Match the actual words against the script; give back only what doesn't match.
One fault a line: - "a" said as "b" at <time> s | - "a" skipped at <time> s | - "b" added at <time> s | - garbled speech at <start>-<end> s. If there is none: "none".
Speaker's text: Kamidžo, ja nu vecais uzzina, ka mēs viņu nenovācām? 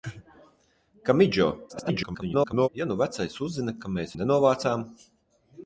- garbled speech at 1.7-2.7 s
- "viņu" skipped at 4.2 s